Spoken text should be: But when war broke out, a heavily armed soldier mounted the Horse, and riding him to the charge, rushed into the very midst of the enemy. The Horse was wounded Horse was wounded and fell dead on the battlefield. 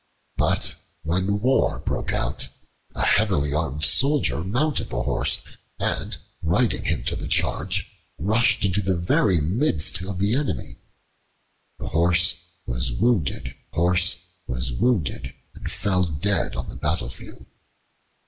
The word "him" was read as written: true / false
true